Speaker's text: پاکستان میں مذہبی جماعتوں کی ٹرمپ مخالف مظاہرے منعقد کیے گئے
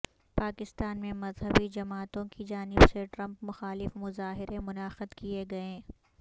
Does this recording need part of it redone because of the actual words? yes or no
yes